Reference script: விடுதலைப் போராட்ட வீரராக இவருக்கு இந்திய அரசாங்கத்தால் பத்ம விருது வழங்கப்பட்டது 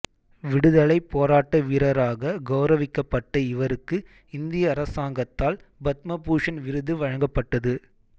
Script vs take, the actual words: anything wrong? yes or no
yes